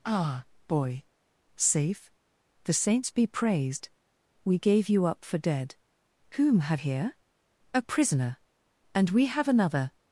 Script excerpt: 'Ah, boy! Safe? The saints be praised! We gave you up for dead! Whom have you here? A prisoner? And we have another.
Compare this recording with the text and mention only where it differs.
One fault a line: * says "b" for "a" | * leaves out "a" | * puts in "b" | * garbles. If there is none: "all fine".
* leaves out "you"